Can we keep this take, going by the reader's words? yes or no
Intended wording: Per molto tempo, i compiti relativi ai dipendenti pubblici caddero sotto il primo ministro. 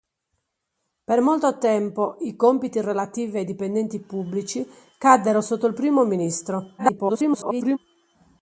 no